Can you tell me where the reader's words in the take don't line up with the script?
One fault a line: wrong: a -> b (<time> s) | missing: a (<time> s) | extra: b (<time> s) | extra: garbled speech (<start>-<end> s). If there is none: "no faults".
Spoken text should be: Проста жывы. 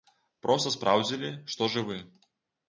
extra: спраўдзілі што (0.8 s)